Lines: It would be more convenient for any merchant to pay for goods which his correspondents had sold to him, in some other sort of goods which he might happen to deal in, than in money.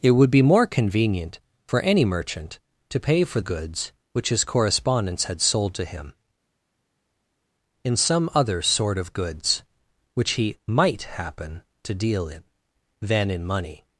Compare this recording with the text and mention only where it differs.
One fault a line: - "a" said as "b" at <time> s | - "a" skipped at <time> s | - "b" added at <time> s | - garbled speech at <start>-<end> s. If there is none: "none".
none